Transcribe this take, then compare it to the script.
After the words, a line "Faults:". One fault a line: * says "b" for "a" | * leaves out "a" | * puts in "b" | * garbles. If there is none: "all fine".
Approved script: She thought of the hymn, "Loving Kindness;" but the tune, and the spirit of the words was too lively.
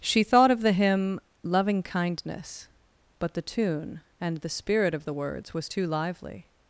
She thought of the hymn, "Loving Kindness;" but the tune, and the spirit of the words was too lively.
Faults:
all fine